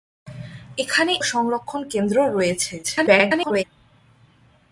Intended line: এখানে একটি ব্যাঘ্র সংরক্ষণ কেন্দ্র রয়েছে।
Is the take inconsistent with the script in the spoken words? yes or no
yes